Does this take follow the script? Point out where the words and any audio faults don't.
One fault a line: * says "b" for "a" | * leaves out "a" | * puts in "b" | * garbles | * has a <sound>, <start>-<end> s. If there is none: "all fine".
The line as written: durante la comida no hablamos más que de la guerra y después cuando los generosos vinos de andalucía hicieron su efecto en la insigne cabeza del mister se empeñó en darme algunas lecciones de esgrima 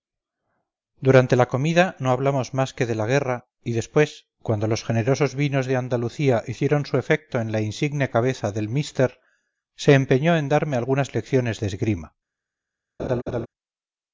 * has a laugh, 13.0-13.5 s